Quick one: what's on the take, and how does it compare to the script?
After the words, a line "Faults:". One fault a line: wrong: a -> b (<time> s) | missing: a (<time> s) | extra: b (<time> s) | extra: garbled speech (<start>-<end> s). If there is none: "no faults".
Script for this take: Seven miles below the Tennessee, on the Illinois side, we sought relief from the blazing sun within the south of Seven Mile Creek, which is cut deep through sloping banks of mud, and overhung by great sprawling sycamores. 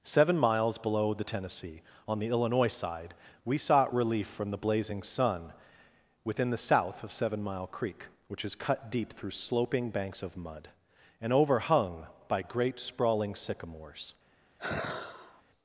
Seven miles below the Tennessee, on the Illinois side, we sought relief from the blazing sun within the south of Seven Mile Creek, which is cut deep through sloping banks of mud, and overhung by great sprawling sycamores.
Faults:
no faults